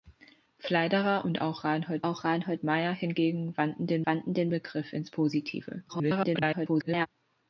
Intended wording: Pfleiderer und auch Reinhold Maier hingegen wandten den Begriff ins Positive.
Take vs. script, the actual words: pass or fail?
fail